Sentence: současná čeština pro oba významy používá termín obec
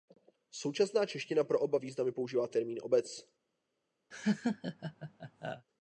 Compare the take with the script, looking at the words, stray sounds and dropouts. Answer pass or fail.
fail